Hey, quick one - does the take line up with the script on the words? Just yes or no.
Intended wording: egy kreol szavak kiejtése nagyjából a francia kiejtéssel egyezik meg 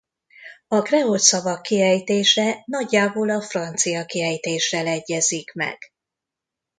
no